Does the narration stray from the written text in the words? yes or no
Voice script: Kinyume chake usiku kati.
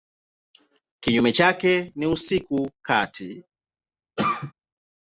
yes